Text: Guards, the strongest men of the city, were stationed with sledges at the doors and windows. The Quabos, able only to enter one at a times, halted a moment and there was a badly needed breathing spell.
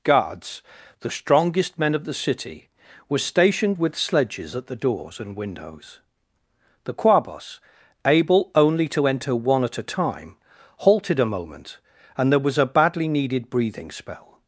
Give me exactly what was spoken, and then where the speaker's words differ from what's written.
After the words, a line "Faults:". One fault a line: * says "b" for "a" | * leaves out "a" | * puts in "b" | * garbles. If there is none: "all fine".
Guards, the strongest men of the city, were stationed with sledges at the doors and windows. The Quabos, able only to enter one at a time, halted a moment and there was a badly needed breathing spell.
Faults:
* says "time" for "times"